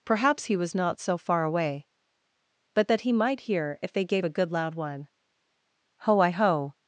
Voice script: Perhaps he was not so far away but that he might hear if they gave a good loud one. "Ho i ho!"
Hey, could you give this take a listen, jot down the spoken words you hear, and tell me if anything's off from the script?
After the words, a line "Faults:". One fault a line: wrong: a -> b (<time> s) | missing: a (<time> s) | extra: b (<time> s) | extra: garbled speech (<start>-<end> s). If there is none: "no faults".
Perhaps he was not so far away but that he might hear if they gave a good loud one. "Ho i ho!"
Faults:
no faults